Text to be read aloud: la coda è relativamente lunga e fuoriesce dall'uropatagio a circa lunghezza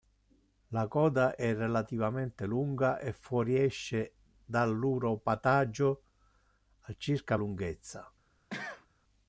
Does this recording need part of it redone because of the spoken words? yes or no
no